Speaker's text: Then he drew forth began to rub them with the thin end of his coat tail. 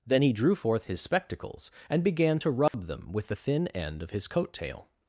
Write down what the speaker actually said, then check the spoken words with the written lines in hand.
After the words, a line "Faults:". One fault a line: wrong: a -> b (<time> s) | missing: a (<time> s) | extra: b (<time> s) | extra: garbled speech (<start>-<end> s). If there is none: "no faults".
Then he drew forth his spectacles, and began to rub them with the thin end of his coat tail.
Faults:
extra: his spectacles and (0.8 s)